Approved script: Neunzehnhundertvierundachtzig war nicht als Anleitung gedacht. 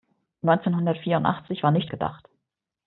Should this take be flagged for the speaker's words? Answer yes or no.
yes